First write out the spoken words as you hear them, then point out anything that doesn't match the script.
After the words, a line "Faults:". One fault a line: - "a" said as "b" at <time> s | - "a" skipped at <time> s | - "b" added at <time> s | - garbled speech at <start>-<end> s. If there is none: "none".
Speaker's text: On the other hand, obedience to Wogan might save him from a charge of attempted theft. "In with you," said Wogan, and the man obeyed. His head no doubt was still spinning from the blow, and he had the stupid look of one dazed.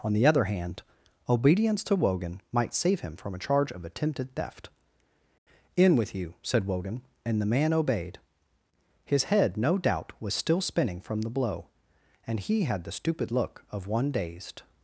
On the other hand, obedience to Wogan might save him from a charge of attempted theft. "In with you," said Wogan, and the man obeyed. His head no doubt was still spinning from the blow, and he had the stupid look of one dazed.
Faults:
none